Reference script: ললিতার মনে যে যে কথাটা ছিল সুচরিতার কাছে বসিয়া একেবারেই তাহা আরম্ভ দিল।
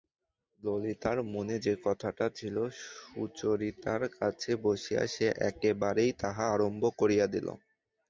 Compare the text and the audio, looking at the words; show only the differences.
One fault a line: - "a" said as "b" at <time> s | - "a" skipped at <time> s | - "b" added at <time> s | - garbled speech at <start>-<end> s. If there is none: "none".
- "যে" skipped at 1.7 s
- "সে" added at 5.1 s
- "করিয়া" added at 7.0 s